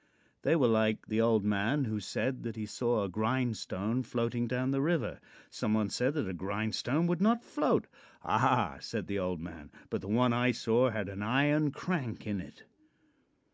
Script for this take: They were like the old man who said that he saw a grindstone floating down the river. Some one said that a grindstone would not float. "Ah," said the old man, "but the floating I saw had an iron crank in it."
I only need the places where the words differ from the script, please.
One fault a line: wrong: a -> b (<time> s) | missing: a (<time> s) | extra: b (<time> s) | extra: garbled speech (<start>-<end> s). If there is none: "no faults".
wrong: floating -> one (10.1 s)